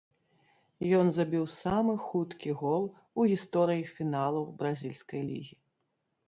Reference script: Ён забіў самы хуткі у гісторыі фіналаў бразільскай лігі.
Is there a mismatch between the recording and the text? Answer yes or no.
yes